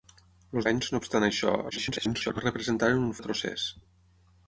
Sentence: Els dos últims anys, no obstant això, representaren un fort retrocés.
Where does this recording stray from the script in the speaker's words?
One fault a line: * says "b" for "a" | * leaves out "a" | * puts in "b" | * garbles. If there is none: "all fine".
* leaves out "dos últims"
* garbles
* leaves out "fort"